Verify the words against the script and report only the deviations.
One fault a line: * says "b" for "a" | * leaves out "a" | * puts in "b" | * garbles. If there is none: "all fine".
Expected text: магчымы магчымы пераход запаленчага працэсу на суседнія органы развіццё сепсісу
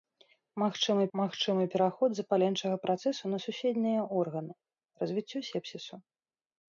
all fine